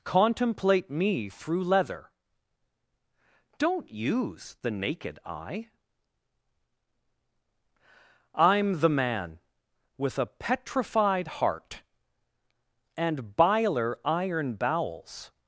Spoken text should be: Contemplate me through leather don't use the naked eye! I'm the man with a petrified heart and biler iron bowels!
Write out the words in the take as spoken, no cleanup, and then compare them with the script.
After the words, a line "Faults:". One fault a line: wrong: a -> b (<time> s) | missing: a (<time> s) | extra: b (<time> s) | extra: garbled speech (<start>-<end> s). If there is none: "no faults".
Contemplate me through leather don't use the naked eye! I'm the man with a petrified heart and biler iron bowels!
Faults:
no faults